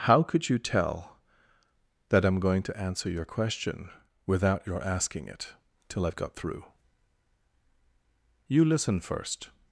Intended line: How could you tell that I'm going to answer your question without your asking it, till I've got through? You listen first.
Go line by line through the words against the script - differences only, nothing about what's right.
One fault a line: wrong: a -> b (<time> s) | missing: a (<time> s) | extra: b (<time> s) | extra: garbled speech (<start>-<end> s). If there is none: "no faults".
no faults